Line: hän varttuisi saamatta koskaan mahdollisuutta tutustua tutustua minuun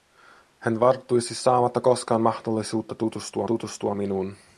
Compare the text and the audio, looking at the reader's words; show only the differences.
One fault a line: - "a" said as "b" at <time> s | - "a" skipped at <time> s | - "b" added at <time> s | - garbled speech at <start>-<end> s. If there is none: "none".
none